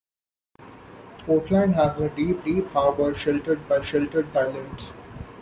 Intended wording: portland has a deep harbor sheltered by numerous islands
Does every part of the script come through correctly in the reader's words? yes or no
no